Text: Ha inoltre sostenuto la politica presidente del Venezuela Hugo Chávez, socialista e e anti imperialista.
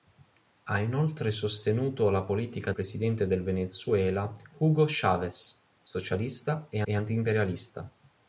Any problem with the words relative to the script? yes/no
no